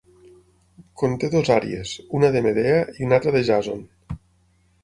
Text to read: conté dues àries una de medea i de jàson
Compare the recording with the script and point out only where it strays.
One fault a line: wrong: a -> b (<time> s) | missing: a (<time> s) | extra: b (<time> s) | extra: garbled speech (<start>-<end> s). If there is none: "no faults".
extra: una altra (3.1 s)